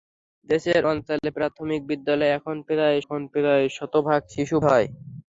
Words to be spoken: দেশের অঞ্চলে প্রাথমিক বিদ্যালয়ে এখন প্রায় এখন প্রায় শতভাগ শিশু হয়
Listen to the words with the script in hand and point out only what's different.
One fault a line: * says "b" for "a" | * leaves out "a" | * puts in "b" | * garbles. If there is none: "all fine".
all fine